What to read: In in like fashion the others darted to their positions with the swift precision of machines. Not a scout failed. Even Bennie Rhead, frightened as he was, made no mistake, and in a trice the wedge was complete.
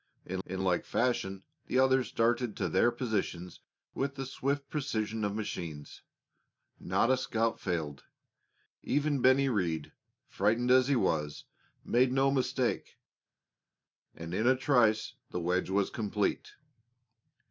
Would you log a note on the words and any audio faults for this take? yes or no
no